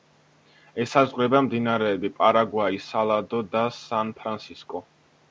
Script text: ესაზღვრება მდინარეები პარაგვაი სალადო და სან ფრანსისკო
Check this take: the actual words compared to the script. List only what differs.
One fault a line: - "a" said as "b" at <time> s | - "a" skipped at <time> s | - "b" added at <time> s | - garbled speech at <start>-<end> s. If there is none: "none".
none